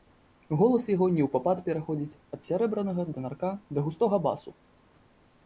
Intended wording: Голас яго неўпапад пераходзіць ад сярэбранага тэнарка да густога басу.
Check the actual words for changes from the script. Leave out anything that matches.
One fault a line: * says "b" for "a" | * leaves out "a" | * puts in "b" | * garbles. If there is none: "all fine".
all fine